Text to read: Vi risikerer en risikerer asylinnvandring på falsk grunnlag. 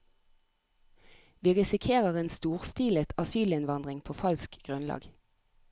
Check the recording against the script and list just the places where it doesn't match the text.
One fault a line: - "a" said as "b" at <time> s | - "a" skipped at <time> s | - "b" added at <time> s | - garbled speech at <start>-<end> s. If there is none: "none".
- "risikerer" said as "storstilet" at 2.3 s